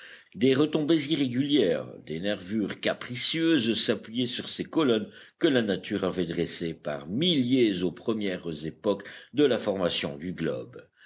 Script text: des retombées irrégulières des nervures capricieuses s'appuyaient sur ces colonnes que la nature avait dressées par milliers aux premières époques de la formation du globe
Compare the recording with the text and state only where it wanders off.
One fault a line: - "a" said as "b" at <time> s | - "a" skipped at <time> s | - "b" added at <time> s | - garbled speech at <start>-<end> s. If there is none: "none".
none